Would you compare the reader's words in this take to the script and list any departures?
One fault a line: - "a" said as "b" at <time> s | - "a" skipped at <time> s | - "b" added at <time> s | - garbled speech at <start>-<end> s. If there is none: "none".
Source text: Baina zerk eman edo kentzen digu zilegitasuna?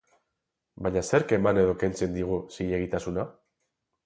none